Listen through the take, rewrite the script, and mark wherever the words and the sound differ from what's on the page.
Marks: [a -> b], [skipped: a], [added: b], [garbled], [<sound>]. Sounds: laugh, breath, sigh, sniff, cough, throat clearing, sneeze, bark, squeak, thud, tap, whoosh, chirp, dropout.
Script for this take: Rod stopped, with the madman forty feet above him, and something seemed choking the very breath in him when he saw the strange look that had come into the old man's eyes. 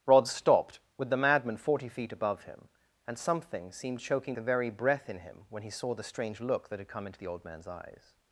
Rod stopped, with the madman forty feet above him, and something seemed choking the very breath in him when he saw the strange look that had come into the old man's eyes.